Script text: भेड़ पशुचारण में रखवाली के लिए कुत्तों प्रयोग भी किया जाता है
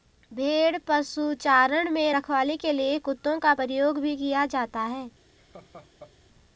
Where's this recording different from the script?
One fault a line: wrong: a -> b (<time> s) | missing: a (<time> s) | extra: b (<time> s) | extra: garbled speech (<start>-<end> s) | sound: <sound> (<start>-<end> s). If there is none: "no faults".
extra: का (3.4 s)
sound: laugh (5.4-6.1 s)